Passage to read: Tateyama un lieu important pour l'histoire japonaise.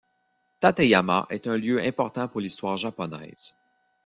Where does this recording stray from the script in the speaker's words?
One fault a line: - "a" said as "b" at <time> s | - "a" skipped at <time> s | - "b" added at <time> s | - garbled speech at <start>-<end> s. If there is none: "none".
- "est" added at 1.3 s